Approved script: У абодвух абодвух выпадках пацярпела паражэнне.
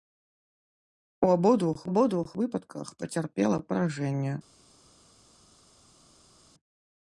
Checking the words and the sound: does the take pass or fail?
pass